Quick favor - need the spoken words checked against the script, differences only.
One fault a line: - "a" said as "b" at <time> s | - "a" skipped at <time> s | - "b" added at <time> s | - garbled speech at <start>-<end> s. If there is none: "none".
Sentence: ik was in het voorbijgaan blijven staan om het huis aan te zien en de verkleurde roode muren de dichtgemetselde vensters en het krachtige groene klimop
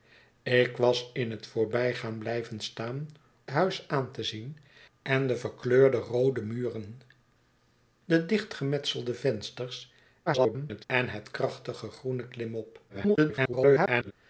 - "om het" skipped at 3.1 s
- garbled speech at 10.3-10.8 s
- garbled speech at 12.9-14.1 s